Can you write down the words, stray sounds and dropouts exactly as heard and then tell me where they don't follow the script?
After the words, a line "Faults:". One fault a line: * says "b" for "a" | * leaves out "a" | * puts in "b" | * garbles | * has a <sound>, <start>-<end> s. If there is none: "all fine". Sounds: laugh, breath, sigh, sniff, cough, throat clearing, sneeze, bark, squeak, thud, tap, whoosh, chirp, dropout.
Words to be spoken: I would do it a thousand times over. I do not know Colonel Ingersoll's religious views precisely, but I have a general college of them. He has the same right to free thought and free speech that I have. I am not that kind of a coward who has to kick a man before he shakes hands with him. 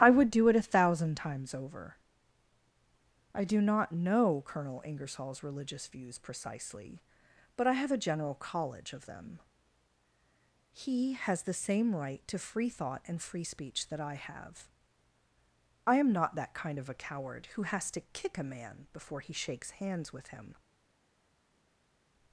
I would do it a thousand times over. I do not know Colonel Ingersoll's religious views precisely, but I have a general college of them. He has the same right to free thought and free speech that I have. I am not that kind of a coward who has to kick a man before he shakes hands with him.
Faults:
all fine